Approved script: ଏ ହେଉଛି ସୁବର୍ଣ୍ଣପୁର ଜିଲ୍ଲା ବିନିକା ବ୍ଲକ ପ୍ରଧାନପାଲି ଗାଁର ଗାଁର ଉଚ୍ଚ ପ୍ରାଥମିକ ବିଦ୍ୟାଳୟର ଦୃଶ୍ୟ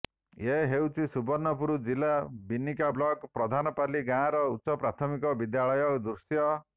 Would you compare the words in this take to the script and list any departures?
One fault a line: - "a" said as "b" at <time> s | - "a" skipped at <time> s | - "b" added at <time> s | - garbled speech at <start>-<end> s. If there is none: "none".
- "ଗାଁର" skipped at 4.4 s